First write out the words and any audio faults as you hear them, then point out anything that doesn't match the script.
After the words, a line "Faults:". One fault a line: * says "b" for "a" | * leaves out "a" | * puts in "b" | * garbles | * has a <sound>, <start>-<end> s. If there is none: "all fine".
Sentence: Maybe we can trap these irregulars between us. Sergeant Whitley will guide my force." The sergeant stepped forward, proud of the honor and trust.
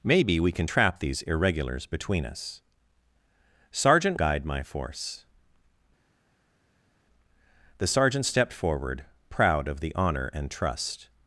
Maybe we can trap these irregulars between us. Sergeant Guide my force." The sergeant stepped forward, proud of the honor and trust.
Faults:
* leaves out "Whitley will"